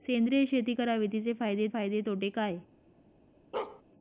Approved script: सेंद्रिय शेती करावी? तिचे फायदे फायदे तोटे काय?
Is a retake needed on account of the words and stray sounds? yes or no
yes